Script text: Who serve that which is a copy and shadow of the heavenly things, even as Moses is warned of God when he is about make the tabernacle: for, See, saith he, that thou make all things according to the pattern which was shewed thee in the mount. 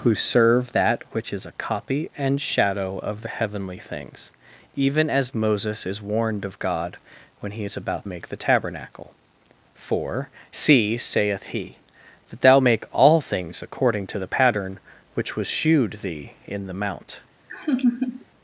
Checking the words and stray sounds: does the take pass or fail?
fail